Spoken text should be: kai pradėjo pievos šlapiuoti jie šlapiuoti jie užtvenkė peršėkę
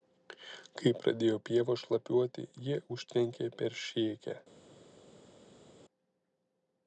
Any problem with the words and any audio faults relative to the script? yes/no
yes